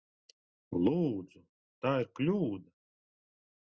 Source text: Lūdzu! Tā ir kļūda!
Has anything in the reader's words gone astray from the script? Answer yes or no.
no